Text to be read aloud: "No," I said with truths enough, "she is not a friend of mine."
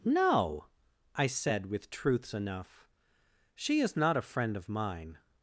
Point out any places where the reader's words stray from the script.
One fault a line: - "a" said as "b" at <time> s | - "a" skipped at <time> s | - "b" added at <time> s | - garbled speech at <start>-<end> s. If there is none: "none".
none